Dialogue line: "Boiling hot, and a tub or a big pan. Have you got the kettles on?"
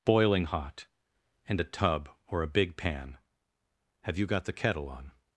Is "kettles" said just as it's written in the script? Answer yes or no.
no